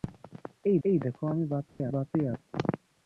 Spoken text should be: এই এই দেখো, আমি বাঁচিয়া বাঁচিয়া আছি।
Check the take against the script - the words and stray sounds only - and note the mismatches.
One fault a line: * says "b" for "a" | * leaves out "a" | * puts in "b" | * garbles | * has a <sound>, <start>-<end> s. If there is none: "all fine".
* has a dropout, 1.7-1.8 s